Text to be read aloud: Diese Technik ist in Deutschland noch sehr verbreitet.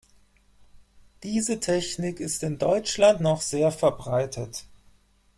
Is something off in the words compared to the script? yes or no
no